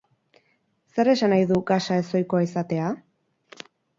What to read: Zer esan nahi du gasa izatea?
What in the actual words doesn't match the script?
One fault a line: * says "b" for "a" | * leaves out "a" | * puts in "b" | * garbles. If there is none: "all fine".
* puts in "ezohikoa"